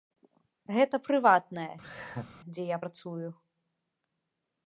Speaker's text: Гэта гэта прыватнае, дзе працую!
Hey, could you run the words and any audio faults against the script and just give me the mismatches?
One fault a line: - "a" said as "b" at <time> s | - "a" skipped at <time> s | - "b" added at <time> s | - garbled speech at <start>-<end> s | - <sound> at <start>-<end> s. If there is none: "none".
- "гэта" skipped at 1.0 s
- laugh at 1.8-2.3 s
- "я" added at 2.7 s